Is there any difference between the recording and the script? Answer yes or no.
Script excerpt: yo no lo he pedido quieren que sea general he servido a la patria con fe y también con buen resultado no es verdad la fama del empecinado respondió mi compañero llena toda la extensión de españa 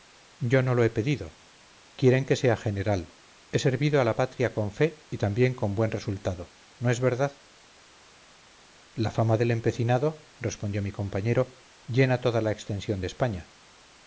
no